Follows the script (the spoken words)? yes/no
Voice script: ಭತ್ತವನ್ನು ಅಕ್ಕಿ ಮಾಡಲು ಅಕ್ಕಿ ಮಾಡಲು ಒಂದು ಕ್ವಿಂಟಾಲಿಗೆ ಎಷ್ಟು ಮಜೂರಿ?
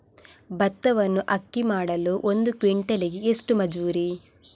no